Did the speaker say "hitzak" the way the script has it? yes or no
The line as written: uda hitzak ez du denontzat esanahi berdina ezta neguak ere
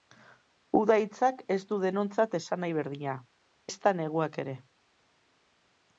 yes